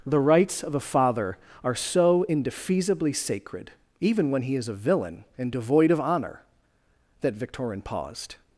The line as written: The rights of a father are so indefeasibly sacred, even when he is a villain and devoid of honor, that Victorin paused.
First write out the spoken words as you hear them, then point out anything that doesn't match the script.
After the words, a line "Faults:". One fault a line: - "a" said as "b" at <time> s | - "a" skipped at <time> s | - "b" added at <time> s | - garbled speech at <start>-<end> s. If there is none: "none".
The rights of a father are so indefeasibly sacred, even when he is a villain and devoid of honor, that Victorin paused.
Faults:
none